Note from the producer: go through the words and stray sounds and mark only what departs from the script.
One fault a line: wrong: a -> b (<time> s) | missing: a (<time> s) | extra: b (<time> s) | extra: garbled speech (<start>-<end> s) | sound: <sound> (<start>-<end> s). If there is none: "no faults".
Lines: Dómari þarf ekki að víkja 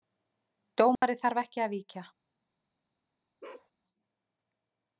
sound: dropout (1.0-1.0 s)
sound: bark (3.4-3.7 s)